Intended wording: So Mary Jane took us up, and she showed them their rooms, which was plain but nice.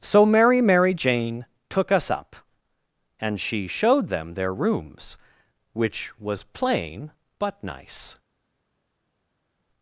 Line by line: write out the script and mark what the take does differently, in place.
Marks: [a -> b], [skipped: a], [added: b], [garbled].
So Mary [added: Mary] Jane took us up, and she showed them their rooms, which was plain but nice.